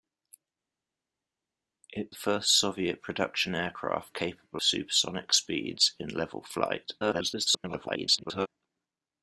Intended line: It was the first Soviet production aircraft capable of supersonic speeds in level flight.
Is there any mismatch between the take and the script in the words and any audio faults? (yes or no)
yes